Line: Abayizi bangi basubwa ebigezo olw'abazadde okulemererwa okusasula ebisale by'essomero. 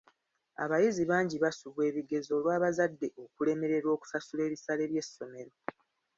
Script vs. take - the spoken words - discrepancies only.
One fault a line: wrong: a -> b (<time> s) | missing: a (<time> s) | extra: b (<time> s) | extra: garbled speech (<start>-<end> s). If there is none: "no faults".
no faults